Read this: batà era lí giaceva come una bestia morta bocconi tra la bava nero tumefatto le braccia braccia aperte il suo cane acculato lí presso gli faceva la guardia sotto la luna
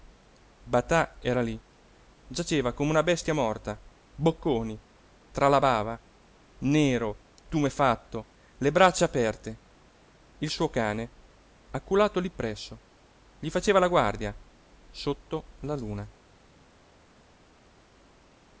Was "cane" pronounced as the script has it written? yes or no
yes